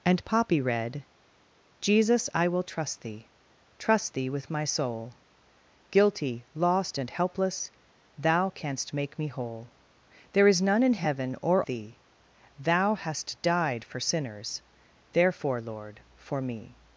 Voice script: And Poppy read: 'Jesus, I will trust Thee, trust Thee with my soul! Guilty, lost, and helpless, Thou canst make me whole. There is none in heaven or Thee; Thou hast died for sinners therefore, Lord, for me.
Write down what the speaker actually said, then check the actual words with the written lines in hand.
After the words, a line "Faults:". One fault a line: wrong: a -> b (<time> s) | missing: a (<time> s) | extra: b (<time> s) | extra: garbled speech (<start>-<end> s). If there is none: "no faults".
And Poppy read: 'Jesus, I will trust Thee, trust Thee with my soul! Guilty, lost, and helpless, Thou canst make me whole. There is none in heaven or Thee; Thou hast died for sinners therefore, Lord, for me.
Faults:
no faults